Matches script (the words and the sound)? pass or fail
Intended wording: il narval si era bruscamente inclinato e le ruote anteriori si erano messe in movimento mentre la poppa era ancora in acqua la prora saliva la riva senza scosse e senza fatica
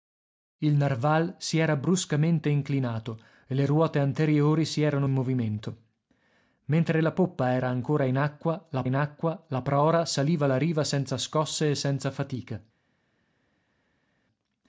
fail